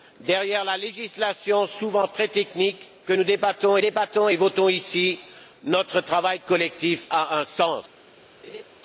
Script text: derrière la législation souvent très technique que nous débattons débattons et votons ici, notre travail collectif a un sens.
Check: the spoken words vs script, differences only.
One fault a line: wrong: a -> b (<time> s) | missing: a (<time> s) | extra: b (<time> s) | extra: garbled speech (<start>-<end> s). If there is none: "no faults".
no faults